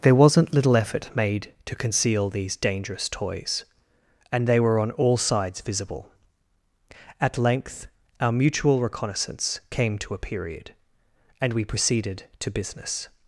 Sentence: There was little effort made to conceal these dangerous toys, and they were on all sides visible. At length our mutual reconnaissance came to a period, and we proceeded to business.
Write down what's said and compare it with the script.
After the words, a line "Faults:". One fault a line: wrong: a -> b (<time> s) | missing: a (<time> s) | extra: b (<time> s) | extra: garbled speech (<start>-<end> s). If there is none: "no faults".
There wasn't little effort made to conceal these dangerous toys, and they were on all sides visible. At length our mutual reconnaissance came to a period, and we proceeded to business.
Faults:
wrong: was -> wasn't (0.1 s)